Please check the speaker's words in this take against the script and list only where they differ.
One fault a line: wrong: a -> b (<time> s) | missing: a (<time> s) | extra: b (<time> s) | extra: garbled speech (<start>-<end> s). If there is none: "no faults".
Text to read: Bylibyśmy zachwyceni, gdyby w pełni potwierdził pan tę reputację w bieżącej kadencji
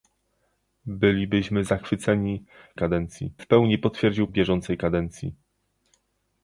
wrong: gdyby -> kadencji (2.8 s)
missing: pan tę reputację (4.3 s)